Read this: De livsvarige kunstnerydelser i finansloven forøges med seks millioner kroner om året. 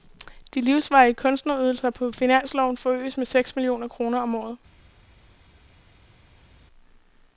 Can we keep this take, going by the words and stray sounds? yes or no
no